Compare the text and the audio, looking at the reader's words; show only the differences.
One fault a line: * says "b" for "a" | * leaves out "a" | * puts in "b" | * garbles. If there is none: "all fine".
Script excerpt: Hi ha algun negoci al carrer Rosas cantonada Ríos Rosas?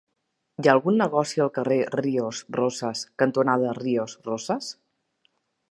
* puts in "Ríos"